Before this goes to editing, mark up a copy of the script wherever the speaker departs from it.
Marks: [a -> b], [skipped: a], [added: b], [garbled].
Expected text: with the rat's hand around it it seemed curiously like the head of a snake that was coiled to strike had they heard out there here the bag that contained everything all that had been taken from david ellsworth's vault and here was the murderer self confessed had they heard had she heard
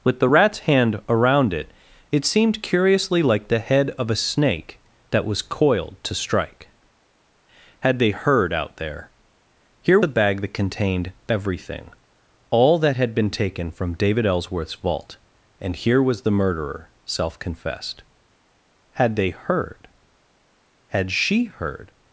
with the rat's hand around it it seemed curiously like the head of a snake that was coiled to strike had they heard out there here the bag that contained everything all that had been taken from david ellsworth's vault and here was the murderer self confessed had they heard had she heard